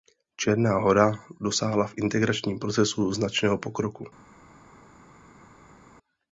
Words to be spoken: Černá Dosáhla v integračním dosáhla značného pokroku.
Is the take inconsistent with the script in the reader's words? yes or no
yes